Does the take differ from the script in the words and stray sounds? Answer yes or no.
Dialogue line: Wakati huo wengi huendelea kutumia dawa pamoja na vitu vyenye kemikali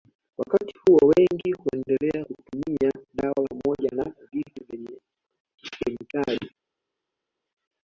no